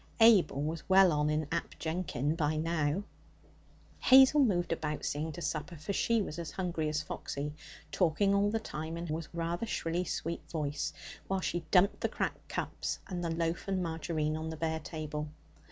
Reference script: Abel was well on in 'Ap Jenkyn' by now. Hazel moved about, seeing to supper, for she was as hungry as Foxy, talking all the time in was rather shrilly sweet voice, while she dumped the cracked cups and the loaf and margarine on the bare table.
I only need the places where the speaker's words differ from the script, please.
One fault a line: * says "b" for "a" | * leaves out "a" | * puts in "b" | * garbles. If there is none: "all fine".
all fine